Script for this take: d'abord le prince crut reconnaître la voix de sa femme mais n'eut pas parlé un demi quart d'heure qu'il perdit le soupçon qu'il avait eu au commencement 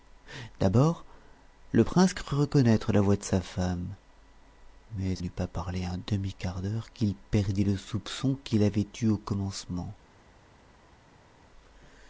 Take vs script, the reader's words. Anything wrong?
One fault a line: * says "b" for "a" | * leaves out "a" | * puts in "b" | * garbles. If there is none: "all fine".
all fine